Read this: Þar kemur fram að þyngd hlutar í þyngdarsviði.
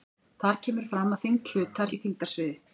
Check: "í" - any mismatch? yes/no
no